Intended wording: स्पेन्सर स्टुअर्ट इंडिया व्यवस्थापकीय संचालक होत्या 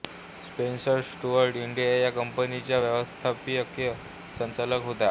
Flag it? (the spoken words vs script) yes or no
yes